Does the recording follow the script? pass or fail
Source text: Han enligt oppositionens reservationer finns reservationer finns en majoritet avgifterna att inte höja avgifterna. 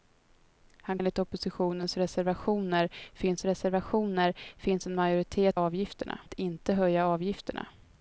pass